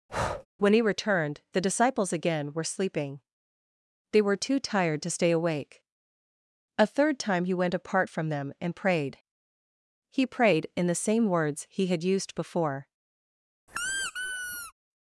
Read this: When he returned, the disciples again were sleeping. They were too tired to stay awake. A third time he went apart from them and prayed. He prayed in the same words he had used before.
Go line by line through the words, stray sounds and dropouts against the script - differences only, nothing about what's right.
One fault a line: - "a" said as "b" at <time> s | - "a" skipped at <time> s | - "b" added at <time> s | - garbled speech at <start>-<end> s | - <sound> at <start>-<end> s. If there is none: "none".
- breath at 0.1-0.5 s
- squeak at 13.7-14.7 s